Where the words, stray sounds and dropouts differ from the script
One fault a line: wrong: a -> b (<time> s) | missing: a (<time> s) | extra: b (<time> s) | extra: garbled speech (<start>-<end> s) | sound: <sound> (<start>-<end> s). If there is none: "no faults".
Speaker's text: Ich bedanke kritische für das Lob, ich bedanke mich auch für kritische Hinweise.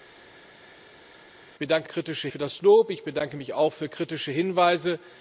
no faults